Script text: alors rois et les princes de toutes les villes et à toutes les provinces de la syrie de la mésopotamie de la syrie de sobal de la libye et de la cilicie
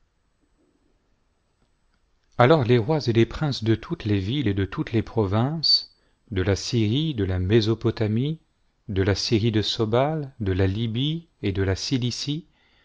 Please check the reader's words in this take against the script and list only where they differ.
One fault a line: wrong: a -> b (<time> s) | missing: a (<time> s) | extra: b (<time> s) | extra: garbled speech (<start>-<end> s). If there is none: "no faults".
extra: les (2.6 s)
wrong: à -> de (4.5 s)